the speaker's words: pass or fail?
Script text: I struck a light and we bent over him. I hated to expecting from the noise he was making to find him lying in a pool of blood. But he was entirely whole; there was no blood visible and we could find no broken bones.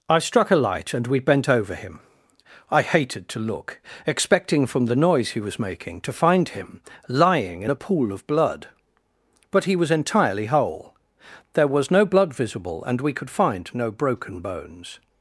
fail